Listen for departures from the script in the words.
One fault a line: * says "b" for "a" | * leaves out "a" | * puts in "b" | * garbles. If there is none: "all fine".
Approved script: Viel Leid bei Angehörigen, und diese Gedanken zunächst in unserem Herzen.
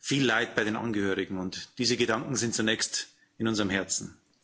* puts in "den"
* puts in "sind"